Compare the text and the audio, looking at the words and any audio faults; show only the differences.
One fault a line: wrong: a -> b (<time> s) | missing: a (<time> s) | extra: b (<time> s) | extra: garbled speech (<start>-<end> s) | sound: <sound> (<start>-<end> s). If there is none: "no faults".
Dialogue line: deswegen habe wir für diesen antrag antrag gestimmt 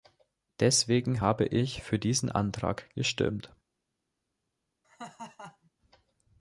wrong: wir -> ich (1.4 s)
missing: antrag (2.9 s)
sound: laugh (4.8-5.7 s)